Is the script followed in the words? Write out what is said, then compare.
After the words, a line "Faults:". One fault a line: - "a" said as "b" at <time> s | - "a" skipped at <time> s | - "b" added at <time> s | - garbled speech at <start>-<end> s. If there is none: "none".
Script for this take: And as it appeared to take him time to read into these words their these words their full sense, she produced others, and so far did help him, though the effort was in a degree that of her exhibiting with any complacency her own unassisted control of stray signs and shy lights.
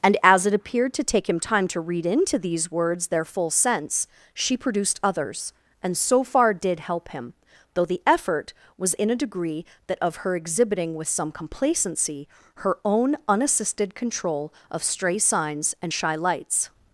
And as it appeared to take him time to read into these words their full sense, she produced others, and so far did help him, though the effort was in a degree that of her exhibiting with some complacency her own unassisted control of stray signs and shy lights.
Faults:
- "these words their" skipped at 3.2 s
- "any" said as "some" at 11.1 s